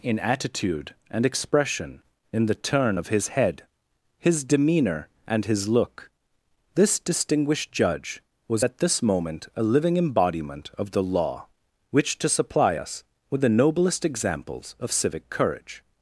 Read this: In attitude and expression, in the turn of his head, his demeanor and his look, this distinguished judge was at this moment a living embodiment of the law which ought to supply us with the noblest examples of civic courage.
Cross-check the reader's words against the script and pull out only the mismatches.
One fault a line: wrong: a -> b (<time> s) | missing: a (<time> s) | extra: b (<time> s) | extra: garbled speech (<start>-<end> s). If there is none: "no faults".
missing: ought (12.2 s)